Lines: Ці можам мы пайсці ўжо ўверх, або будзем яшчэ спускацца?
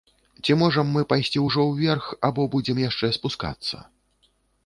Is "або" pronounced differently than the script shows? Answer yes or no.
no